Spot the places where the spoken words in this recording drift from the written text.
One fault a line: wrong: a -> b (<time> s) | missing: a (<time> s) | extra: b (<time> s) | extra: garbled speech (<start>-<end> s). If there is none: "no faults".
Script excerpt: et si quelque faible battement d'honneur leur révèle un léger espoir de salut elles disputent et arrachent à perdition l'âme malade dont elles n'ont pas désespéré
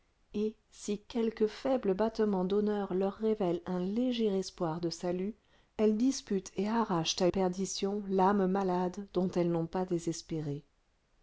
no faults